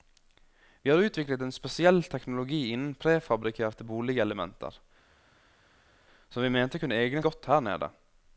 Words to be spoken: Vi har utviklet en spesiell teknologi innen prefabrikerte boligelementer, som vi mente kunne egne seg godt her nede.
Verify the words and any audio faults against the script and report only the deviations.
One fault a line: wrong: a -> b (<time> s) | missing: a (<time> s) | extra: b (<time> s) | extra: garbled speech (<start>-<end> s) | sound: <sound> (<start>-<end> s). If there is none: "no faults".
missing: seg (7.2 s)